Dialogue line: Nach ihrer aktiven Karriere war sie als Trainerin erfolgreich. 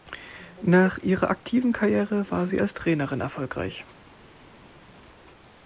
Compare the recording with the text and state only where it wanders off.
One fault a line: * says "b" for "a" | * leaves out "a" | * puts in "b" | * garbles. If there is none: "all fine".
all fine